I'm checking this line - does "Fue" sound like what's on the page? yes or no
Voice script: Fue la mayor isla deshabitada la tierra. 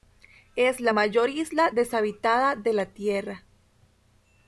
no